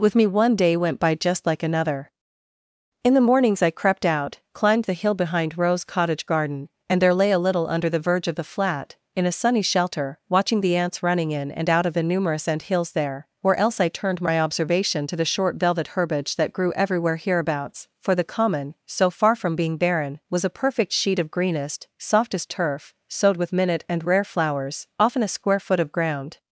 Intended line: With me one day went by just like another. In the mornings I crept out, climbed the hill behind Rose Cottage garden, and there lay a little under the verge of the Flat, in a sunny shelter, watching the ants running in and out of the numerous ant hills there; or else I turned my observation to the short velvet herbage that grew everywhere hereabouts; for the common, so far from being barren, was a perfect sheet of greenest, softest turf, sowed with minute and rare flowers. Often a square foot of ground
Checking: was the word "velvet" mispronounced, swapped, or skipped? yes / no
no